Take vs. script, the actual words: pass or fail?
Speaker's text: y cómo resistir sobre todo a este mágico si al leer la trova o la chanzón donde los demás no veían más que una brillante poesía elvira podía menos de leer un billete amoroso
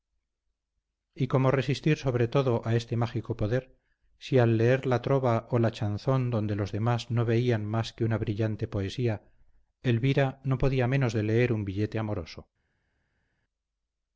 fail